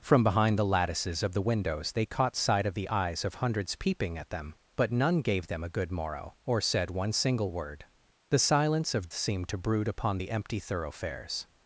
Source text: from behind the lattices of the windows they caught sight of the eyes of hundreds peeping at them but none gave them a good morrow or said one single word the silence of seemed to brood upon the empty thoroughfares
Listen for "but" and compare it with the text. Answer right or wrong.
right